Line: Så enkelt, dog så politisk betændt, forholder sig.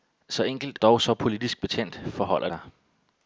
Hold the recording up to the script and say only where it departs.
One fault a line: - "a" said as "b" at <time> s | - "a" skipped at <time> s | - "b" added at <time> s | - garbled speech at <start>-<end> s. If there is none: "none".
none